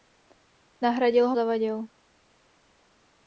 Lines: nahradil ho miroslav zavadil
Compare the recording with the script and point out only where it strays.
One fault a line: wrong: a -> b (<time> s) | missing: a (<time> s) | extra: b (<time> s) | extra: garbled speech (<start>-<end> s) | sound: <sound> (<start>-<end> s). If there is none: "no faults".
missing: miroslav (1.4 s)